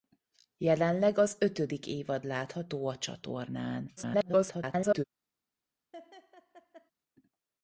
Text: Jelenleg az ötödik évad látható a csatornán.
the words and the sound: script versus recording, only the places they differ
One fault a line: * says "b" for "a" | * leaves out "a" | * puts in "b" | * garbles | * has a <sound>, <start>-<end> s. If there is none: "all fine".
* garbles
* has a laugh, 5.9-6.9 s